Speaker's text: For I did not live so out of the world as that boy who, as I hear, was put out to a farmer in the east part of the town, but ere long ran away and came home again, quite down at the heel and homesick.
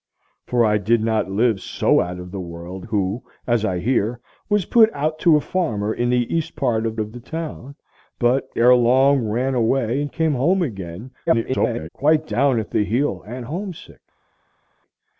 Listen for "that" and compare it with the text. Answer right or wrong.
wrong